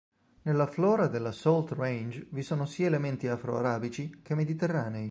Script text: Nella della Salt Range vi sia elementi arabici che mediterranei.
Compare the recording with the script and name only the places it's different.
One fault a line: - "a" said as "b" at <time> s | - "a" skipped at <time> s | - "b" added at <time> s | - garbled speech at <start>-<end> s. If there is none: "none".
- "flora" added at 0.7 s
- "sono" added at 2.4 s
- "afro" added at 3.3 s